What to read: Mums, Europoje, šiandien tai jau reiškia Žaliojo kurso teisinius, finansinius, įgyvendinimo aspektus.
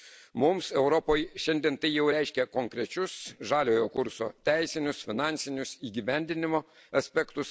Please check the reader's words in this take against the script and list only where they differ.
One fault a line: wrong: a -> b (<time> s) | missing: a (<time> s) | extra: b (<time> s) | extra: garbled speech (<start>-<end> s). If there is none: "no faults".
extra: konkrečius (2.5 s)